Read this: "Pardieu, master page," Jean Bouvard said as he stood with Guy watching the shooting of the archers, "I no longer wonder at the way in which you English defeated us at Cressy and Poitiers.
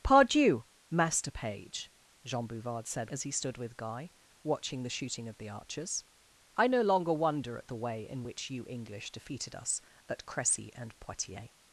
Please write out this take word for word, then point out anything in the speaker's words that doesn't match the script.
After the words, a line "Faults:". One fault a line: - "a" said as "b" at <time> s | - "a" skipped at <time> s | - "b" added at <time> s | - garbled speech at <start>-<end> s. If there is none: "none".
"Pardieu, master page," Jean Bouvard said as he stood with Guy watching the shooting of the archers, "I no longer wonder at the way in which you English defeated us at Cressy and Poitiers.
Faults:
none